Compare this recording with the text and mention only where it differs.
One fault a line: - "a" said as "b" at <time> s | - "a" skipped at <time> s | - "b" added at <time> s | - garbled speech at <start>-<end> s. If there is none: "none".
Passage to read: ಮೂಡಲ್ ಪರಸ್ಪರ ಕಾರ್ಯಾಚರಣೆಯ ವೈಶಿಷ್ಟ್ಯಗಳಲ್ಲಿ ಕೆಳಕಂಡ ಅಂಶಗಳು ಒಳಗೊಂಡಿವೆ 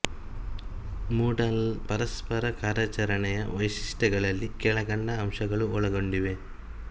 none